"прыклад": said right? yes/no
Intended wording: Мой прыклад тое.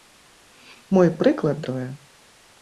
yes